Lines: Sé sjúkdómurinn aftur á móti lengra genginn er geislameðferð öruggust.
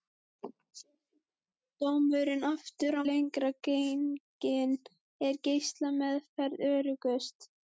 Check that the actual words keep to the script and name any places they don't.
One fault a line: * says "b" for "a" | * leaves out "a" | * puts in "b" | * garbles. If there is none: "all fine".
* leaves out "móti"